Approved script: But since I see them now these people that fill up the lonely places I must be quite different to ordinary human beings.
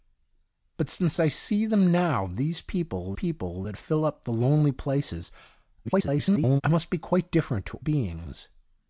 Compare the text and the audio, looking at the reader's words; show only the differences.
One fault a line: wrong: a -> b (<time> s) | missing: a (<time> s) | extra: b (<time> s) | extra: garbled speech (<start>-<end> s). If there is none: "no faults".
extra: people (3.1 s)
extra: garbled speech (5.8-6.6 s)
missing: ordinary human (7.8 s)